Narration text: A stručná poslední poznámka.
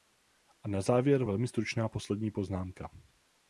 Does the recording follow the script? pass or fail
fail